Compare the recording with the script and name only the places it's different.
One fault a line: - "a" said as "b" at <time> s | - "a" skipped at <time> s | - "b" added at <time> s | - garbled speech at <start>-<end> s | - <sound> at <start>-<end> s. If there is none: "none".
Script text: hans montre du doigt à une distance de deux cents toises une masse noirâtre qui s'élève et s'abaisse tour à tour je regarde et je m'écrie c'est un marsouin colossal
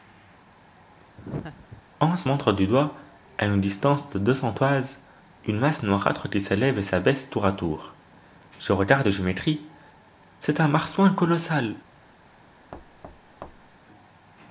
- laugh at 1.2-1.8 s
- thud at 12.7-13.8 s